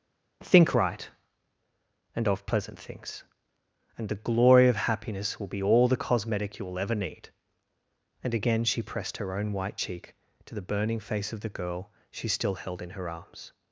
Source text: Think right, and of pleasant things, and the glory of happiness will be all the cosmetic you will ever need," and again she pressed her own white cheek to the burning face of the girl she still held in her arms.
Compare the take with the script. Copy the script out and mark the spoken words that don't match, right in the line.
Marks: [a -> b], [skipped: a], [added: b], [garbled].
Think right, and of pleasant things, and the glory of happiness will be all the cosmetic you will ever need," and again she pressed her own white cheek to the burning face of the girl she still held in her arms.